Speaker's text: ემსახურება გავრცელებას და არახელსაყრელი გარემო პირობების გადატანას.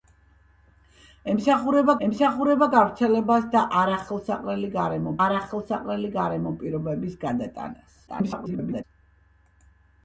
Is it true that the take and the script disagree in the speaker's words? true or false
true